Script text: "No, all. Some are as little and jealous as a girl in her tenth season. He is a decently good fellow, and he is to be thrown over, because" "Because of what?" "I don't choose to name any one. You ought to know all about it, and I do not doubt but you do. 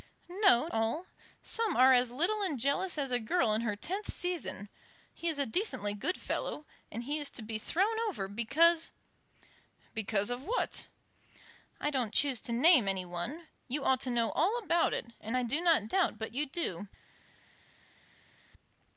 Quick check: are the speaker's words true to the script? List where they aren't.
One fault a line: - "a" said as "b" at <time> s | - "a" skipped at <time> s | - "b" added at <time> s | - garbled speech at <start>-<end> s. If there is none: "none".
none